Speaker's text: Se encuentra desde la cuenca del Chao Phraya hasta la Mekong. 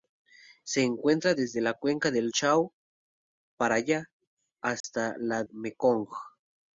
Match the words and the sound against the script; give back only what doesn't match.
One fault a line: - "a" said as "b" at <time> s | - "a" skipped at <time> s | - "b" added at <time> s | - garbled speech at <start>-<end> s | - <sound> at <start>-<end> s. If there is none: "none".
- dropout at 4.8-4.8 s